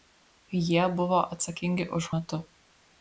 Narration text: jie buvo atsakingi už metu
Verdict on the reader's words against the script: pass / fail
pass